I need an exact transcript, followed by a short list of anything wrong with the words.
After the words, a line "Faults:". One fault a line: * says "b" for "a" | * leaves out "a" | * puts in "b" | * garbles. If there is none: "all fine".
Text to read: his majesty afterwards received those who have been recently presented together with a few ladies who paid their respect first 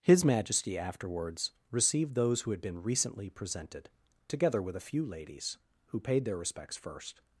his majesty afterwards received those who had been recently presented together with a few ladies who paid their respects first
Faults:
* says "had" for "have"
* says "respects" for "respect"